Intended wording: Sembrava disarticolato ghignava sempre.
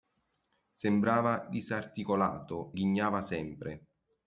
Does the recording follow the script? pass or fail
pass